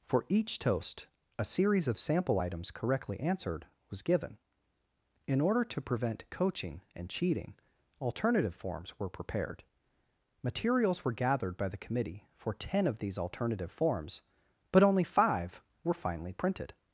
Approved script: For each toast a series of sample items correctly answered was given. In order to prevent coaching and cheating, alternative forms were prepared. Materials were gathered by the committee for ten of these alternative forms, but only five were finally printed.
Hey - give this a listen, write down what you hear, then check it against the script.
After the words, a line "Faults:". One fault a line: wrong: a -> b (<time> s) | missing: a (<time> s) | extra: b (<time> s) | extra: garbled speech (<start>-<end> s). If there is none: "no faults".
For each toast a series of sample items correctly answered was given. In order to prevent coaching and cheating, alternative forms were prepared. Materials were gathered by the committee for ten of these alternative forms, but only five were finally printed.
Faults:
no faults